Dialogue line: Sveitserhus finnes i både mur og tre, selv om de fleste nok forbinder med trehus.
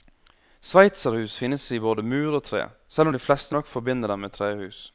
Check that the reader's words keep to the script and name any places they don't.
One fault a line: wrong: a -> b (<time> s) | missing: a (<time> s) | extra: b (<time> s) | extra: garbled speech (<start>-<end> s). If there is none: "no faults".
extra: dem (4.1 s)